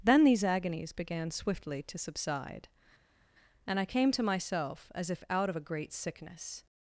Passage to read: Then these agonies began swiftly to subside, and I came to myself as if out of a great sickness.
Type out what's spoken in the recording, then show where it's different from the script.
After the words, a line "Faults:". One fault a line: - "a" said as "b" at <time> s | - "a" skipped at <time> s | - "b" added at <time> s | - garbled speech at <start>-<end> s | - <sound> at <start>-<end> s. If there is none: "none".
Then these agonies began swiftly to subside, and I came to myself as if out of a great sickness.
Faults:
none